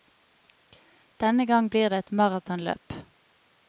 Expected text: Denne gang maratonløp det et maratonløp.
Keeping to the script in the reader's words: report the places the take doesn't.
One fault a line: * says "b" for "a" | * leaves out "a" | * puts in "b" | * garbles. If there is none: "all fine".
* says "blir" for "maratonløp"